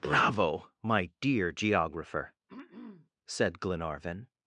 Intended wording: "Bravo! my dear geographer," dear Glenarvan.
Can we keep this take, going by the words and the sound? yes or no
no